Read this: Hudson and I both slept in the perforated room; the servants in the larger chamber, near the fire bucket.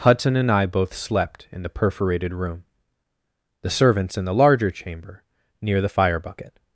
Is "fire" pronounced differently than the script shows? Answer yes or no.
no